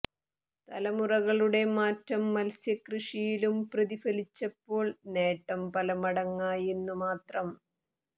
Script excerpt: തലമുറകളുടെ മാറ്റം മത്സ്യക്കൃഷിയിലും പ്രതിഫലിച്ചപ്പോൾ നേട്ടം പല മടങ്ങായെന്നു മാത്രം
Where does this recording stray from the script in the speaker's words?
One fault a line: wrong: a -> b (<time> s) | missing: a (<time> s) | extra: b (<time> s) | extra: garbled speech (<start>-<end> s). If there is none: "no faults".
no faults